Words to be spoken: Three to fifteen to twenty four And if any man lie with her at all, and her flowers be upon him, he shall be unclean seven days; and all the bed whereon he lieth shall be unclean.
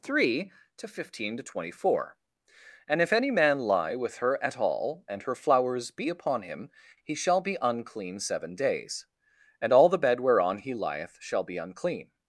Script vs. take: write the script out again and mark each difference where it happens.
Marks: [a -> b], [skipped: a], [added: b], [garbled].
Three to fifteen to twenty four And if any man lie with her at all, and her flowers be upon him, he shall be unclean seven days; and all the bed whereon he lieth shall be unclean.